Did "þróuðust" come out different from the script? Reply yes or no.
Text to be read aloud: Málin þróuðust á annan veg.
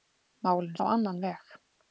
yes